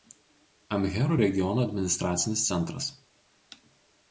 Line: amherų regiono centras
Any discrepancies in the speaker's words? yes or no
yes